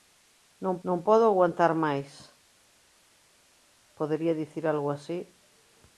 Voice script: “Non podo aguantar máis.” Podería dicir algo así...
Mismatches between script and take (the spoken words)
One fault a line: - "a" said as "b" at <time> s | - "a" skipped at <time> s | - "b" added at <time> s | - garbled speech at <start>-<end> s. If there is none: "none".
- "non" added at 0.9 s